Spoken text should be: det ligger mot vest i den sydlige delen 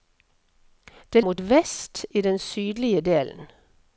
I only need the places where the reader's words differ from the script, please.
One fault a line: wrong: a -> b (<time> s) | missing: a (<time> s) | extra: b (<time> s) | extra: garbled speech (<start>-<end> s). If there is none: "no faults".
missing: ligger (1.2 s)